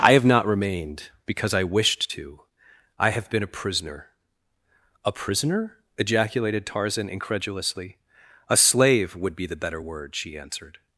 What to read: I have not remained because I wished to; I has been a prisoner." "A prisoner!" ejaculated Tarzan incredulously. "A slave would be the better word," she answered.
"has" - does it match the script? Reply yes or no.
no